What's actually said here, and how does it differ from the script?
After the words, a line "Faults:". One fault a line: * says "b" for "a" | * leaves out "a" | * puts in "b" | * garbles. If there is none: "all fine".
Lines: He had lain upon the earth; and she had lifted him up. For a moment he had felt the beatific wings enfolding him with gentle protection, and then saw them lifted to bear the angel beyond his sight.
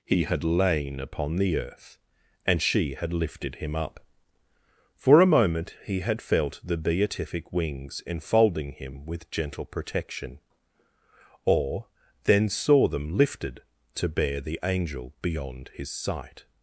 He had lain upon the earth; and she had lifted him up. For a moment he had felt the beatific wings enfolding him with gentle protection, or then saw them lifted to bear the angel beyond his sight.
Faults:
* says "or" for "and"